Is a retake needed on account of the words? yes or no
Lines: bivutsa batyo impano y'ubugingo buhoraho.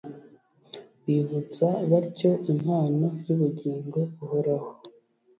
no